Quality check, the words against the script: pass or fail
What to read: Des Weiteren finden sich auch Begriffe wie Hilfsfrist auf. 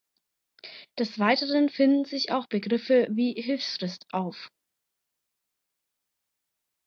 pass